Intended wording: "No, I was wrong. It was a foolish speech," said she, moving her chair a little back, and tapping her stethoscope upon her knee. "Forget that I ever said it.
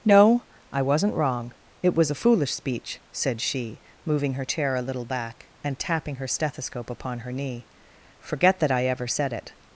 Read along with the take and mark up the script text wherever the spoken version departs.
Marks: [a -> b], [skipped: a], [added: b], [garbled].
"No, I [was -> wasn't] wrong. It was a foolish speech," said she, moving her chair a little back, and tapping her stethoscope upon her knee. "Forget that I ever said it.